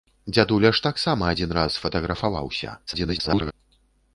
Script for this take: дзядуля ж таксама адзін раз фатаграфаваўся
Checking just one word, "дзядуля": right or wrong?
right